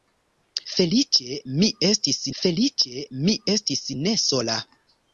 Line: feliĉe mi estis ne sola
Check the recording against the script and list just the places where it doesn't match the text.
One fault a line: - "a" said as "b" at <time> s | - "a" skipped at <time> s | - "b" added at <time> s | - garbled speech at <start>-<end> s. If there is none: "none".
- "feliĉe mi estis" added at 2.4 s